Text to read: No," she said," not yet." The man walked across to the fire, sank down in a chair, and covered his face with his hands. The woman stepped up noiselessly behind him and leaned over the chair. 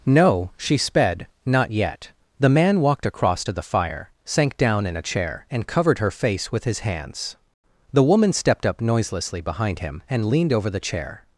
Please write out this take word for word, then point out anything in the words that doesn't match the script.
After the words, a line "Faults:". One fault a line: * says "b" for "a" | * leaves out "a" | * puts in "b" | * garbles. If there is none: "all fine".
No," she sped," not yet." The man walked across to the fire, sank down in a chair, and covered her face with his hands. The woman stepped up noiselessly behind him and leaned over the chair.
Faults:
* says "sped" for "said"
* says "her" for "his"